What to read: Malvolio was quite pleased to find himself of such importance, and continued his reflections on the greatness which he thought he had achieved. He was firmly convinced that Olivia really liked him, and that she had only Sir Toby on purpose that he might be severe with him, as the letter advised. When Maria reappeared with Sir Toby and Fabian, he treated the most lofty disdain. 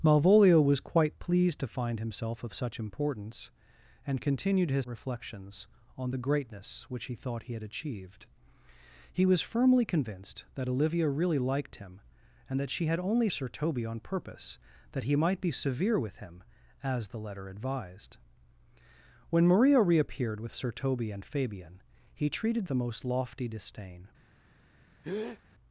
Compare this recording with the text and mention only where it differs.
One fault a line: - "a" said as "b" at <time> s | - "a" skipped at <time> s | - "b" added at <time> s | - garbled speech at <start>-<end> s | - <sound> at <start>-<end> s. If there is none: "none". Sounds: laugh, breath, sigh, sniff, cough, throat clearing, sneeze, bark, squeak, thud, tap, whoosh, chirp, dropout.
- breath at 25.0-25.4 s